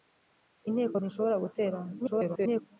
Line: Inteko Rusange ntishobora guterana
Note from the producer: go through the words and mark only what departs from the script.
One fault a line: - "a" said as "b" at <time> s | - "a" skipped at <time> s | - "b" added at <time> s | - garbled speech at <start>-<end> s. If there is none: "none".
- "Rusange" skipped at 0.9 s
- garbled speech at 2.0-2.6 s